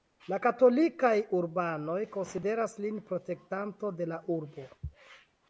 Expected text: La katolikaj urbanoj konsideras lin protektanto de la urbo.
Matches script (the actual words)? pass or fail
pass